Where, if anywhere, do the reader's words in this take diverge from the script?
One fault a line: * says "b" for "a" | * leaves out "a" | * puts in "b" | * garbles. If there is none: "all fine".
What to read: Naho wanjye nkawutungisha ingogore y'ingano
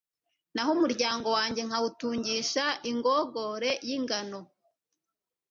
* puts in "umuryango"